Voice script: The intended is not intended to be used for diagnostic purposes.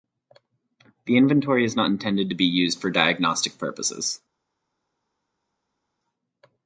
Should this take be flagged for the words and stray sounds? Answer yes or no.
yes